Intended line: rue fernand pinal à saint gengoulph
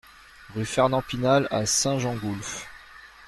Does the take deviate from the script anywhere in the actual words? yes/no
no